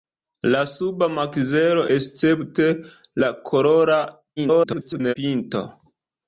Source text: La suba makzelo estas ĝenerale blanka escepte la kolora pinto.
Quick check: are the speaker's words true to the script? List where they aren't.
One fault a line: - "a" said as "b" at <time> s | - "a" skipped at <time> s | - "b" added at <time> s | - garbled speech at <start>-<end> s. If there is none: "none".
- "estas ĝenerale blanka" skipped at 1.8 s
- garbled speech at 4.4-5.1 s